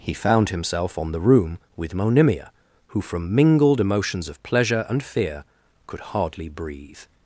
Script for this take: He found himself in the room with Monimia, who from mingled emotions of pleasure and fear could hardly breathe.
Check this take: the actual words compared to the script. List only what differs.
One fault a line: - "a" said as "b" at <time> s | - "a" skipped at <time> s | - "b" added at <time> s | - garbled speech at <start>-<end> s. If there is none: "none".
- "in" said as "on" at 1.0 s